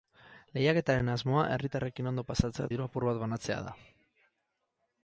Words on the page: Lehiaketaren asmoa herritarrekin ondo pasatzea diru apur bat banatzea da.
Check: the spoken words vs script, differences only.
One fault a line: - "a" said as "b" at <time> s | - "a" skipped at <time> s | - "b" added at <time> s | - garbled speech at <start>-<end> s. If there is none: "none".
none